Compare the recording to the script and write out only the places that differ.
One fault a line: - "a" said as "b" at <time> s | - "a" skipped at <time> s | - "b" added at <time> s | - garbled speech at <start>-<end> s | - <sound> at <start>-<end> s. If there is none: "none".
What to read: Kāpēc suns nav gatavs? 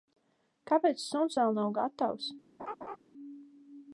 - "vēl" added at 1.4 s
- laugh at 2.6-3.0 s